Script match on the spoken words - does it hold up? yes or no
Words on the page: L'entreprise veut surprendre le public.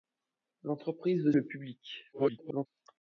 no